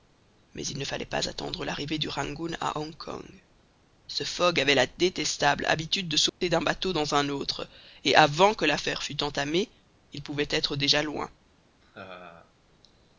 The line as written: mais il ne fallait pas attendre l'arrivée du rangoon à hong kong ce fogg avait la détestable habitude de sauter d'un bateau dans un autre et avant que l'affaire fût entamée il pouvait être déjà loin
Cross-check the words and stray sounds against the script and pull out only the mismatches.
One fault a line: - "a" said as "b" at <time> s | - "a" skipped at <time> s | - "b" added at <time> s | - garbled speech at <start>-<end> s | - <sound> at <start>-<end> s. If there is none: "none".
- dropout at 6.3-6.4 s
- laugh at 11.8-12.5 s